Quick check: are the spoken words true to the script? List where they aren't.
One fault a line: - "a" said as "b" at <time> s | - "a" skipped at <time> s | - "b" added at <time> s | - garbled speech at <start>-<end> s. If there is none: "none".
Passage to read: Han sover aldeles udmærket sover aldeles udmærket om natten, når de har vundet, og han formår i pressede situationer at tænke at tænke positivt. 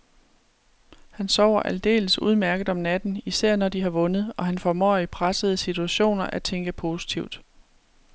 - "sover aldeles udmærket" skipped at 2.7 s
- "især" added at 3.2 s
- "at tænke" skipped at 6.7 s